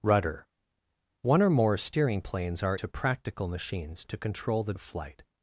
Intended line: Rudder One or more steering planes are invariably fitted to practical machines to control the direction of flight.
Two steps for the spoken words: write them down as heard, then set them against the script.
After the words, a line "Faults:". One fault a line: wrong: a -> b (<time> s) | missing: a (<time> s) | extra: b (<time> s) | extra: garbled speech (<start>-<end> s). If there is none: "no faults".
Rudder One or more steering planes are to practical machines to control the of flight.
Faults:
missing: invariably fitted (2.8 s)
missing: direction (4.7 s)